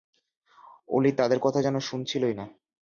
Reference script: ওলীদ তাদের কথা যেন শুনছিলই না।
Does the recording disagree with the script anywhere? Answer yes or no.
no